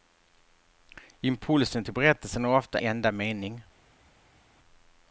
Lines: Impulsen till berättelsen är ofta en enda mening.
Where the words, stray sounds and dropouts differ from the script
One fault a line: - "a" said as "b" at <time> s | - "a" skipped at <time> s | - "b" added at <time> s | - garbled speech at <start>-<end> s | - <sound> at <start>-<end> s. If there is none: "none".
- "en" skipped at 2.8 s